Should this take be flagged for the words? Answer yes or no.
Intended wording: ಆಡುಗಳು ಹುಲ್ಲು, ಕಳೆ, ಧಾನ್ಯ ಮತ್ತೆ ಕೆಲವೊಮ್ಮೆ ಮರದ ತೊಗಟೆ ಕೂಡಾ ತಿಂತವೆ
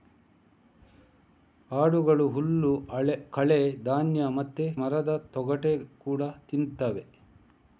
yes